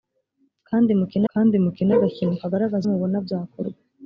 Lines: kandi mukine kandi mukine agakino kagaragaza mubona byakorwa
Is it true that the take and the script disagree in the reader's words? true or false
false